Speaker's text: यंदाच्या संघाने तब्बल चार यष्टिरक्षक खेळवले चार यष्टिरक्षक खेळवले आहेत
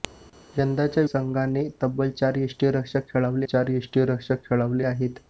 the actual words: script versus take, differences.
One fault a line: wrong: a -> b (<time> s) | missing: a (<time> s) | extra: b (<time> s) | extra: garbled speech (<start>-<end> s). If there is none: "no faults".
no faults